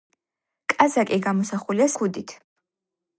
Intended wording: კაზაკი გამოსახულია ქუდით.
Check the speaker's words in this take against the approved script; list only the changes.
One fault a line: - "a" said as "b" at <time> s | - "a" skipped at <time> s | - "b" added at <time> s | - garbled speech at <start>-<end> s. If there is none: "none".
none